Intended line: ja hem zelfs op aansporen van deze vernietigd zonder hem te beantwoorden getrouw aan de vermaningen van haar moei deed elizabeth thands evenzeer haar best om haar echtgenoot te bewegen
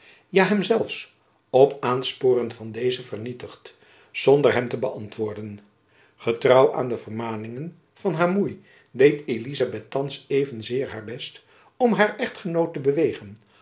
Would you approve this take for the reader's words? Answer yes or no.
yes